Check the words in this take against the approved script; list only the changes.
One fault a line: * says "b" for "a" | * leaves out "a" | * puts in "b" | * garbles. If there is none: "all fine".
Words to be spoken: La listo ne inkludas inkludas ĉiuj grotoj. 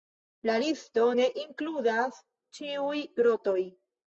* leaves out "inkludas"